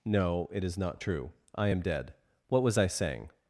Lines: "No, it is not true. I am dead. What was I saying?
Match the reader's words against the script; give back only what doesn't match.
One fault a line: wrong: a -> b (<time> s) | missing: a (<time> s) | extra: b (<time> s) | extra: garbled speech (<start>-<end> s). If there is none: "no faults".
no faults